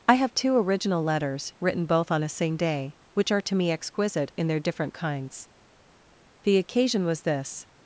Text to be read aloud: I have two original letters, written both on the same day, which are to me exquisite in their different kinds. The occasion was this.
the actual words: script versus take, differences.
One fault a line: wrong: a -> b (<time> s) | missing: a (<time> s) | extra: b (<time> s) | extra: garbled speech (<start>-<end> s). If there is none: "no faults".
wrong: the -> a (2.2 s)